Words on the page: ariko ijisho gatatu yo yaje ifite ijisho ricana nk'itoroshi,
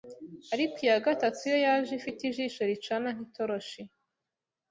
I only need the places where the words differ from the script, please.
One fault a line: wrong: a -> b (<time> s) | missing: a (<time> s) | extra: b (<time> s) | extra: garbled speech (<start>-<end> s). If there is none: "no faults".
wrong: ijisho -> iya (0.8 s)